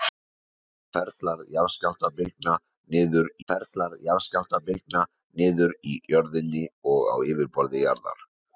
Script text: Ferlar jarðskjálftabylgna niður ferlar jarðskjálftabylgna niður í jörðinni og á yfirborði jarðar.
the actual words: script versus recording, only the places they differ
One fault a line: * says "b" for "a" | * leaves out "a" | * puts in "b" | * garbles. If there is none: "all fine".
all fine